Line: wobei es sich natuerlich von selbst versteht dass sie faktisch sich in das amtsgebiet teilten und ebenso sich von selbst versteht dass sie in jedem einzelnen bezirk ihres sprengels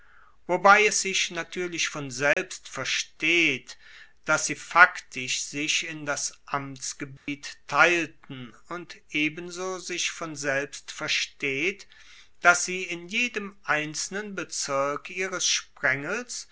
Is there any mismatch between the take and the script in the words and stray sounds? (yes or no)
yes